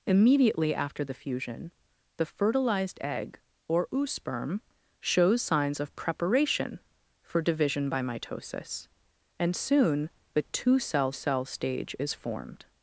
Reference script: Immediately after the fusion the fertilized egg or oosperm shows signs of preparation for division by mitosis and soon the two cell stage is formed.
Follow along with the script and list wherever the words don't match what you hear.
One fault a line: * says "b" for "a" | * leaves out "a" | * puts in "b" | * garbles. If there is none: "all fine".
* puts in "cell"